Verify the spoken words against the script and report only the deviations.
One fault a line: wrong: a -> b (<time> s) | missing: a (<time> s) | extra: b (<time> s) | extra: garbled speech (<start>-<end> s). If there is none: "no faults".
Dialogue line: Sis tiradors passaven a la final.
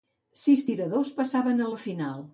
no faults